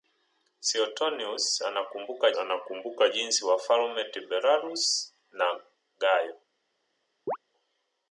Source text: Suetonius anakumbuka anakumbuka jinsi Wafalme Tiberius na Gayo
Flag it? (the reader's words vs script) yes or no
no